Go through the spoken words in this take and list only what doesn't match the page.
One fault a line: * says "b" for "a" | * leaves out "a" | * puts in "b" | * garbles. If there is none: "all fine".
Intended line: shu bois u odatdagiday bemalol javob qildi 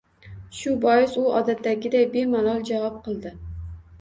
all fine